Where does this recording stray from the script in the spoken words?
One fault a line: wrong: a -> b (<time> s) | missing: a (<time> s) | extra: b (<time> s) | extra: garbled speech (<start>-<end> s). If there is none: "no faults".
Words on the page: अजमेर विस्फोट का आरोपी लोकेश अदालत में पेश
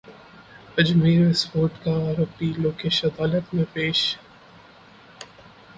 no faults